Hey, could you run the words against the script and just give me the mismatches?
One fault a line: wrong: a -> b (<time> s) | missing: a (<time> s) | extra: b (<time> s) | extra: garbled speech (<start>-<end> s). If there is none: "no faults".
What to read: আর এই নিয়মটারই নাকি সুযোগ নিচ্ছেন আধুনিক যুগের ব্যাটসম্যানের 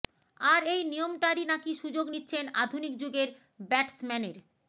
no faults